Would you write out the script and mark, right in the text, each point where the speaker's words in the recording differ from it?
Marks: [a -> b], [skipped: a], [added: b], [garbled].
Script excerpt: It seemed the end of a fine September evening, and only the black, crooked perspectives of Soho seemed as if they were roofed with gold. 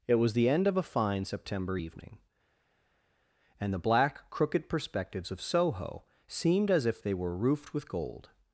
It [seemed -> was] the end of a fine September evening, and [skipped: only] the black, crooked perspectives of Soho seemed as if they were roofed with gold.